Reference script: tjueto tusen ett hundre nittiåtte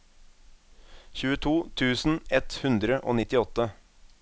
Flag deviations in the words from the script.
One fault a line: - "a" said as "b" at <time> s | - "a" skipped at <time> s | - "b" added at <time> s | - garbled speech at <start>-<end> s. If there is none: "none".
- "og" added at 3.1 s